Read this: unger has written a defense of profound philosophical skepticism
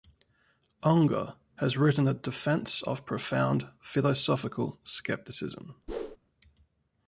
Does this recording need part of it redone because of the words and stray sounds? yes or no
yes